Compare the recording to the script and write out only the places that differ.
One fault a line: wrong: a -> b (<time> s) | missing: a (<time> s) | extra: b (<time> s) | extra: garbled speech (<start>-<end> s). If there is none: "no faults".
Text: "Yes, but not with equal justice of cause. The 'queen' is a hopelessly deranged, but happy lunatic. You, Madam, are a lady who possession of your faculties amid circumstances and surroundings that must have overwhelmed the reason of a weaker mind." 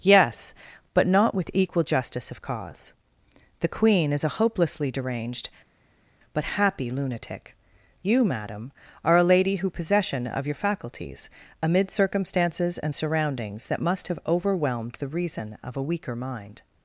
no faults